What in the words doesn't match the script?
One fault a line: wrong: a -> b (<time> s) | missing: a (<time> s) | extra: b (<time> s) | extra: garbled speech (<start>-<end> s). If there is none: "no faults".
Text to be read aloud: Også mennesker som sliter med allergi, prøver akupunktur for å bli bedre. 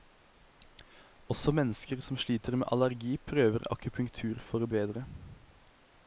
missing: bli (4.7 s)